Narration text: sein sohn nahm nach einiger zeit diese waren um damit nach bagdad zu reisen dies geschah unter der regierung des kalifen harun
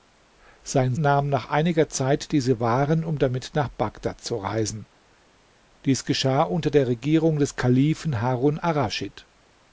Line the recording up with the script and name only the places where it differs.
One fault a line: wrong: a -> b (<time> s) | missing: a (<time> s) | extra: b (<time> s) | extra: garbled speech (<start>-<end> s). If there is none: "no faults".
missing: sohn (0.9 s)